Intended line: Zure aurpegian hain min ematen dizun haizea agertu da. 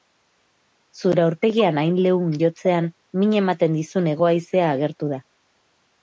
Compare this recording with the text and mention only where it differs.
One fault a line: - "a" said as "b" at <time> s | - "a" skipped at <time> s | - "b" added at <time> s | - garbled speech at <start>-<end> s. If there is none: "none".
- "leun jotzean" added at 2.0 s
- "hego" added at 4.1 s